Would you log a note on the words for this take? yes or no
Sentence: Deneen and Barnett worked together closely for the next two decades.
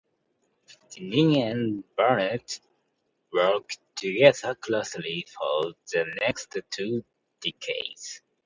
no